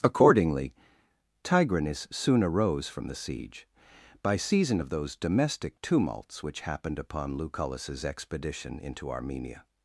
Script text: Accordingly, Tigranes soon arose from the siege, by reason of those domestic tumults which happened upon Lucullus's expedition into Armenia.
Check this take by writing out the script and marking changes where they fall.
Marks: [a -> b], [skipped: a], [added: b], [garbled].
Accordingly, Tigranes soon arose from the siege, by [reason -> season] of those domestic tumults which happened upon Lucullus's expedition into Armenia.